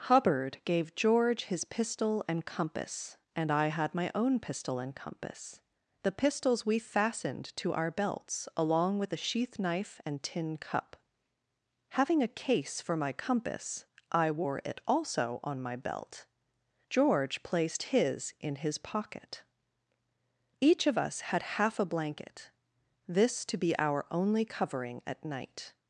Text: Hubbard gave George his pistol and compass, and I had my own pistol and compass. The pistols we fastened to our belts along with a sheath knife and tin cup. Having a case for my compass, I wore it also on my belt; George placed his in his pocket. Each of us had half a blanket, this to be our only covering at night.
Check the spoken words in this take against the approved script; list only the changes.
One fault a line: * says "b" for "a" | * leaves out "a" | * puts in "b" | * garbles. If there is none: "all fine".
all fine